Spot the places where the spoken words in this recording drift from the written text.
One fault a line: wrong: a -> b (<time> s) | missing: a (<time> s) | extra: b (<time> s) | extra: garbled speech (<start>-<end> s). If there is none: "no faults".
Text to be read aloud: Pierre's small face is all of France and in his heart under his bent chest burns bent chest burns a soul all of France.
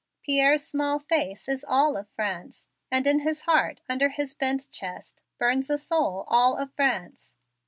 missing: bent chest burns (5.7 s)